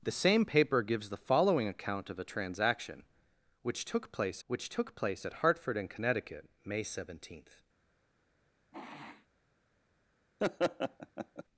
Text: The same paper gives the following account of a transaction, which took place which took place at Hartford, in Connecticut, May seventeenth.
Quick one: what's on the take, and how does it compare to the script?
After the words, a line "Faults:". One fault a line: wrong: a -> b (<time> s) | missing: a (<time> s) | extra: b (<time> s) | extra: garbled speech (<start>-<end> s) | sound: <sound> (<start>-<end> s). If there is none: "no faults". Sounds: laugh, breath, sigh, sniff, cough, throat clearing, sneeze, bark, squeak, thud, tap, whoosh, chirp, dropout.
The same paper gives the following account of a transaction, which took place which took place at Hartford, in Connecticut, May seventeenth.
Faults:
sound: sniff (8.7-9.3 s)
sound: laugh (10.4-11.4 s)